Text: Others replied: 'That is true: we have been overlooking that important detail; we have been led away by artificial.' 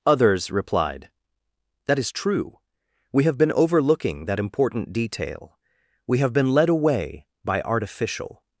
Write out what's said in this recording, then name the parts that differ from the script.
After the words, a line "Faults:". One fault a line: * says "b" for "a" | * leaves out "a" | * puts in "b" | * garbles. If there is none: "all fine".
Others replied: 'That is true: we have been overlooking that important detail; we have been led away by artificial.'
Faults:
all fine